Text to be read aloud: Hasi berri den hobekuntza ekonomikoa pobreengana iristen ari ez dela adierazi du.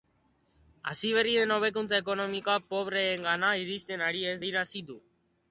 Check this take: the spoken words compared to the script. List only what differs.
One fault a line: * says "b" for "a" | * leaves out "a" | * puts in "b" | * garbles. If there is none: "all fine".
* leaves out "dela"